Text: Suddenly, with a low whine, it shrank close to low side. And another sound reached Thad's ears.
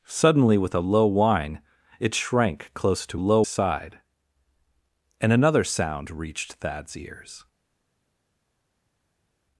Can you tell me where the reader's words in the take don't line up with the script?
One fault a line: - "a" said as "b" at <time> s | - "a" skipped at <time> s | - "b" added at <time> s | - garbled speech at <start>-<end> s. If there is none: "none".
none